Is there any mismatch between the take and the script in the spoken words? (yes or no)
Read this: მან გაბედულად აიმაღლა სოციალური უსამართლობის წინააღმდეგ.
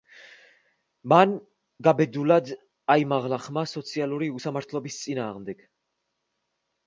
yes